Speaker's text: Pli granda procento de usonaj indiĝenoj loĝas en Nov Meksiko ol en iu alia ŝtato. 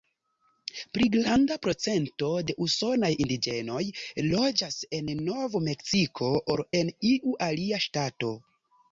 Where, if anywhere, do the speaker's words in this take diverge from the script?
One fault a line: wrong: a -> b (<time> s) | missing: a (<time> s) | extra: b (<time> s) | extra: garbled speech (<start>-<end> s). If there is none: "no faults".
no faults